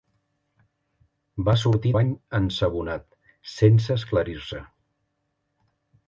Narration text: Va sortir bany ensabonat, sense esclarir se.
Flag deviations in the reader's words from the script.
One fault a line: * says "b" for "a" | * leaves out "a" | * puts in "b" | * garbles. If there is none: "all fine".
all fine